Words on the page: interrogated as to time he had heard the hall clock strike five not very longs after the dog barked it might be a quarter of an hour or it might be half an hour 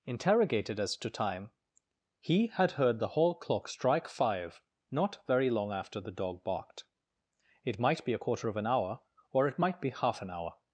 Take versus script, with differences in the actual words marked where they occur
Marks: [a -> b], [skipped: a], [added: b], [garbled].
interrogated as to time he had heard the hall clock strike five not very [longs -> long] after the dog barked it might be a quarter of an hour or it might be half an hour